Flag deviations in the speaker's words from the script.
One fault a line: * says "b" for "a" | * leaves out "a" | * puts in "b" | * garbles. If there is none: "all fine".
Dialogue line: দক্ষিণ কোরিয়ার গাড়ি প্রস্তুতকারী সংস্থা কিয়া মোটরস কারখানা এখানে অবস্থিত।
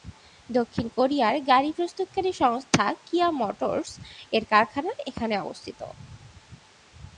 * puts in "এর"